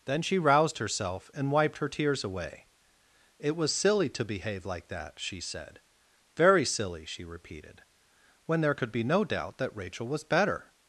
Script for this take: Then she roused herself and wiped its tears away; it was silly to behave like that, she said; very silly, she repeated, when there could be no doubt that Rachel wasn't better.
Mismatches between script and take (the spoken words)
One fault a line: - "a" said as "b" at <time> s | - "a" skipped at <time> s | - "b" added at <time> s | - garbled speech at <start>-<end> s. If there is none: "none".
- "its" said as "her" at 1.8 s
- "wasn't" said as "was" at 10.1 s